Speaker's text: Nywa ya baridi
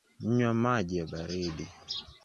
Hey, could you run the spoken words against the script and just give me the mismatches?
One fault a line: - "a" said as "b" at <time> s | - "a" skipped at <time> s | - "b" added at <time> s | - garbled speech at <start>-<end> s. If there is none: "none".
- "maji" added at 0.5 s